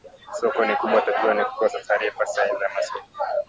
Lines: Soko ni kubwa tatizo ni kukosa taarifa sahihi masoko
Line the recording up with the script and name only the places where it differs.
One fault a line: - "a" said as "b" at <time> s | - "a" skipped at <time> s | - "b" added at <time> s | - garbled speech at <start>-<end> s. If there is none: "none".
- "za" added at 2.6 s